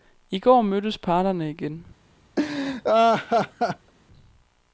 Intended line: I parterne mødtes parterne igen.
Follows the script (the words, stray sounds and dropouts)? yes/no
no